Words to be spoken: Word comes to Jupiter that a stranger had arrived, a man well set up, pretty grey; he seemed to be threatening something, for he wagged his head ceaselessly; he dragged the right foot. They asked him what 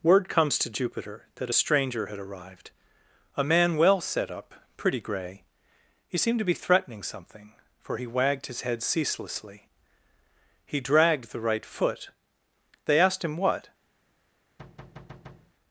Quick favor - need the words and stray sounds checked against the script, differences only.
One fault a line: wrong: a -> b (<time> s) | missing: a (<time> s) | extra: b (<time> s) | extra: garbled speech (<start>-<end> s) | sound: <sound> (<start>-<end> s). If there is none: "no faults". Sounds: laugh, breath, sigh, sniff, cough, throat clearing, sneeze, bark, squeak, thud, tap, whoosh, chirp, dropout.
sound: thud (14.6-15.5 s)